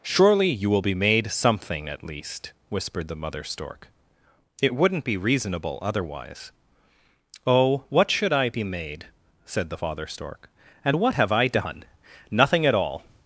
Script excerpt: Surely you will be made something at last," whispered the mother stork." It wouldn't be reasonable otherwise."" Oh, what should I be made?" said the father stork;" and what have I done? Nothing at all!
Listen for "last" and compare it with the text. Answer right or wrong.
wrong